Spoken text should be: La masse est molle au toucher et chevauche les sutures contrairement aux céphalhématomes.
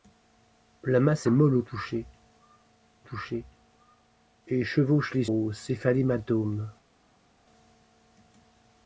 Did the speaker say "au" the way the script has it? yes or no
yes